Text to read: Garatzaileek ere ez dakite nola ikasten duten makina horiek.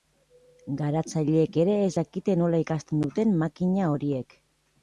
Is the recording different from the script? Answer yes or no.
no